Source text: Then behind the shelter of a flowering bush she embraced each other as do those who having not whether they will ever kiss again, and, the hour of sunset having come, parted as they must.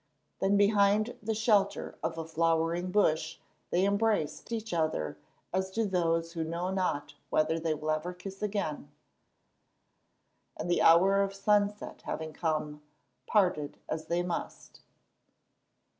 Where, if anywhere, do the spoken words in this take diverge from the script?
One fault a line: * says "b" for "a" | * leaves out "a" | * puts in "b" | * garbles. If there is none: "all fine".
* says "they" for "she"
* says "know" for "having"